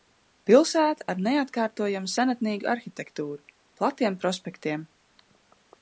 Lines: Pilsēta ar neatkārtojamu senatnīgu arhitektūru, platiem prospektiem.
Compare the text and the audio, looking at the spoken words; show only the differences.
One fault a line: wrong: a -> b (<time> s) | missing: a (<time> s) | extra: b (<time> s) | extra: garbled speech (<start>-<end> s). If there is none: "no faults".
no faults